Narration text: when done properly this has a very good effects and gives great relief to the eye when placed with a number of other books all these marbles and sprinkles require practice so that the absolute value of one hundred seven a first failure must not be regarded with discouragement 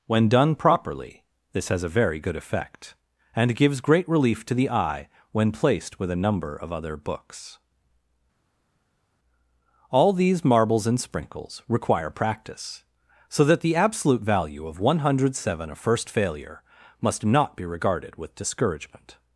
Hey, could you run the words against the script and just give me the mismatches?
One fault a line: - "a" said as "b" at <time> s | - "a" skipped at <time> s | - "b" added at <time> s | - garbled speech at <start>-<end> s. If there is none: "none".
- "effects" said as "effect" at 2.4 s